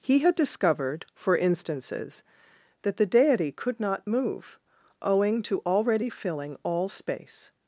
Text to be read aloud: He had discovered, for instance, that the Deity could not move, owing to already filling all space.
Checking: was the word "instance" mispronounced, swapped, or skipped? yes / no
yes